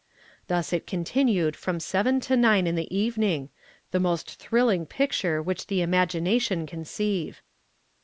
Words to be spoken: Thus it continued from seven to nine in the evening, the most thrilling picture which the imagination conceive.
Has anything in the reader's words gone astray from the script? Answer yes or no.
no